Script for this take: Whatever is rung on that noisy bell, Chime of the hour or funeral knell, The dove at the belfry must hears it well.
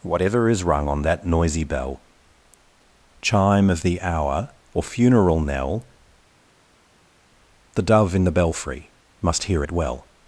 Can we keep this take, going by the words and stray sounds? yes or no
no